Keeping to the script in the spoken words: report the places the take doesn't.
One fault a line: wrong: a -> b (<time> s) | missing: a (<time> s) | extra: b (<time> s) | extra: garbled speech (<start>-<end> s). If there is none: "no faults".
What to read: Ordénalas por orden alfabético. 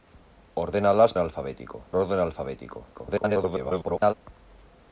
wrong: por -> alfabético (1.2 s)
extra: garbled speech (2.9-4.1 s)